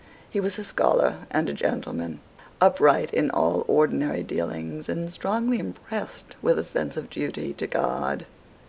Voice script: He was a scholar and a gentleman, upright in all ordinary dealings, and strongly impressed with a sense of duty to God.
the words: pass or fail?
pass